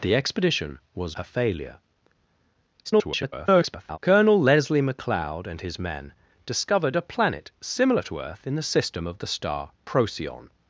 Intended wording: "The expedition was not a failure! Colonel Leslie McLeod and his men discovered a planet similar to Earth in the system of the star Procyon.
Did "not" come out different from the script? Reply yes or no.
yes